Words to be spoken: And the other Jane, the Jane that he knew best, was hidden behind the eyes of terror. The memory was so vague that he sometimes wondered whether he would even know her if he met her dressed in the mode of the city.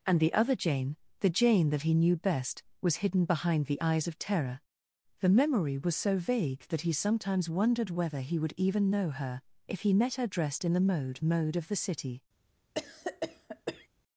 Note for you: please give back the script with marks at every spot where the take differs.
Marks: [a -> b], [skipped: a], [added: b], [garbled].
And the other Jane, the Jane that he knew best, was hidden behind the eyes of terror. The memory was so vague that he sometimes wondered whether he would even know her if he met her dressed in the mode [added: mode] of the city.